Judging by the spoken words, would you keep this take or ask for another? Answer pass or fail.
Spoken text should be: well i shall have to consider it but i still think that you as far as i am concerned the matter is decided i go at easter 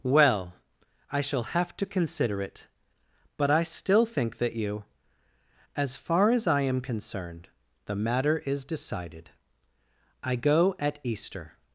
pass